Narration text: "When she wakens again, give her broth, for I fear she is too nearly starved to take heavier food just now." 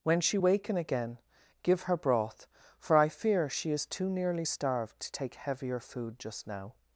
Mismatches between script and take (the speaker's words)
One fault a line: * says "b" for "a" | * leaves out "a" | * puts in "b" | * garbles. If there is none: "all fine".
* says "waken" for "wakens"